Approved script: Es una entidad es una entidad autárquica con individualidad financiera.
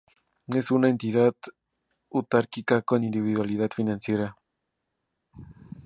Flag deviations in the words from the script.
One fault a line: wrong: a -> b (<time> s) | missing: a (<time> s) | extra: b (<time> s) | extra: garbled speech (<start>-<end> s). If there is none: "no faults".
missing: es una entidad (1.4 s)